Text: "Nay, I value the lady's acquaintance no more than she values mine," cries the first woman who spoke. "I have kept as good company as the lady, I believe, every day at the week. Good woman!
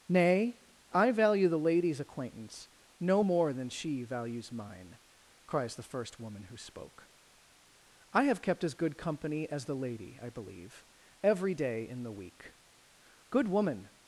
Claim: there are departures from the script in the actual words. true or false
true